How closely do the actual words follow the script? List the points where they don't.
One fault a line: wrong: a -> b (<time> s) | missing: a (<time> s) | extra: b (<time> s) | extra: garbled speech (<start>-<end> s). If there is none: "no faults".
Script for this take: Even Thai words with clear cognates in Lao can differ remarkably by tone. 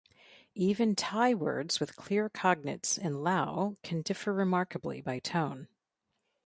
no faults